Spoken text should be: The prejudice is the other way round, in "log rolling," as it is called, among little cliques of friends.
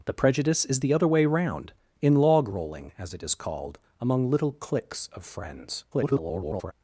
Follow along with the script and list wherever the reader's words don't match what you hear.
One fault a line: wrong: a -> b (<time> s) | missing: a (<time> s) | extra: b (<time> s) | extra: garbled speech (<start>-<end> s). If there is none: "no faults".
extra: garbled speech (5.9-6.7 s)